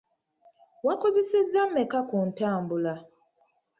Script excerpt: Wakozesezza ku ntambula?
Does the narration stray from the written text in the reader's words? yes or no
yes